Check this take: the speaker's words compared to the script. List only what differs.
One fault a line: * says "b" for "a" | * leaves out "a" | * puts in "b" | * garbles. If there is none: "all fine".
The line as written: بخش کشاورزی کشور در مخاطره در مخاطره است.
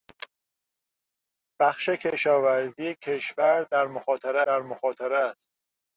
all fine